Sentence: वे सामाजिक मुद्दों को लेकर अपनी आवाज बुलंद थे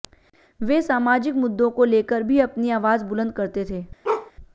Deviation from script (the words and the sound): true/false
true